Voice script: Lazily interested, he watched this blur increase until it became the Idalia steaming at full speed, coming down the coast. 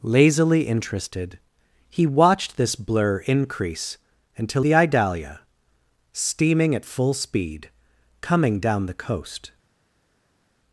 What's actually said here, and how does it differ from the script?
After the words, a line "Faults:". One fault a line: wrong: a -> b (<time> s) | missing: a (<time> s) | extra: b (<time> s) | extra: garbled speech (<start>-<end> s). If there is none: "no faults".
Lazily interested, he watched this blur increase until the Idalia steaming at full speed, coming down the coast.
Faults:
missing: it became (4.7 s)